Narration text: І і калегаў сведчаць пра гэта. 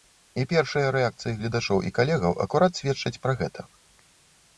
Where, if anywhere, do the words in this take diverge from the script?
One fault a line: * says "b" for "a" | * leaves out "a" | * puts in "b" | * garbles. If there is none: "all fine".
* puts in "першыя рэакцыі гледачоў"
* puts in "акурат"